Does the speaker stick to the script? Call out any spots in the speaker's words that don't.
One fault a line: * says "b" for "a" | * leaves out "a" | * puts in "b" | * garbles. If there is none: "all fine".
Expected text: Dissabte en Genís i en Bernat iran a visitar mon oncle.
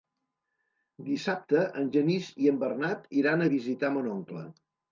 all fine